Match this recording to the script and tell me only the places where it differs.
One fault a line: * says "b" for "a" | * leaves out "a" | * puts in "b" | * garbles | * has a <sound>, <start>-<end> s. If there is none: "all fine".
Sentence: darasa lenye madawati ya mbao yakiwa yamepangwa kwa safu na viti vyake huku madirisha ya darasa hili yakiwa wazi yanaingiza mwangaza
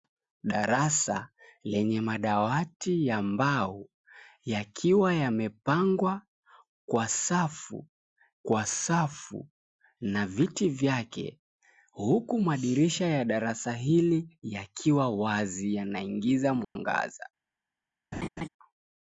* puts in "kwa safu"
* has a dropout, 16.6-16.8 s
* has a laugh, 18.1-18.5 s